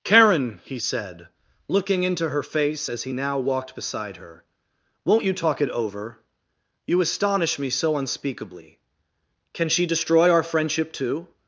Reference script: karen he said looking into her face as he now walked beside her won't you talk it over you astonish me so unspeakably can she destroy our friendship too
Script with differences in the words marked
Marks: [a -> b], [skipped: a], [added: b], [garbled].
karen he said looking into her face as he now walked beside her won't you talk it over you astonish me so unspeakably can she destroy our friendship too